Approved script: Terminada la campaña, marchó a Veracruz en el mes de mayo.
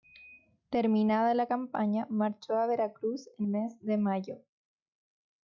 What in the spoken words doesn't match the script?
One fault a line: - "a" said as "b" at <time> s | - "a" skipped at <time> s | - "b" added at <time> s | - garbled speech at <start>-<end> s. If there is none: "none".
- "el" skipped at 3.5 s